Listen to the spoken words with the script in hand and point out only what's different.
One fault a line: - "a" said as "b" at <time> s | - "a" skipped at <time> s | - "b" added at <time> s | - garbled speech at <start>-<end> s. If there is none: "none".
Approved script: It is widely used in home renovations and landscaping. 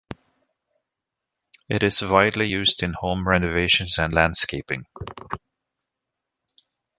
none